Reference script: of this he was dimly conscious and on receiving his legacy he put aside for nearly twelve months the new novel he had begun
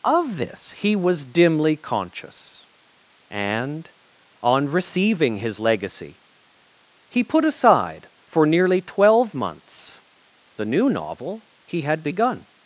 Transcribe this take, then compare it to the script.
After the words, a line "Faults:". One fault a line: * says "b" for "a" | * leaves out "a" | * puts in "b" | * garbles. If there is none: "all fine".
of this he was dimly conscious and on receiving his legacy he put aside for nearly twelve months the new novel he had begun
Faults:
all fine